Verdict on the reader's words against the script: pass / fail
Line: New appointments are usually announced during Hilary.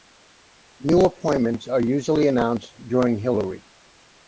pass